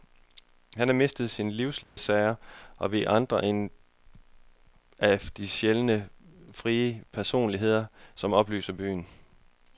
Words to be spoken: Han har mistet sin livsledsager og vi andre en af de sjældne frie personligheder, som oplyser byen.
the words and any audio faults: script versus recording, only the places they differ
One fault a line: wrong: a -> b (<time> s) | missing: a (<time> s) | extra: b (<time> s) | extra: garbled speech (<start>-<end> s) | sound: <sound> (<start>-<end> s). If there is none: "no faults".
sound: dropout (1.8-2.0 s)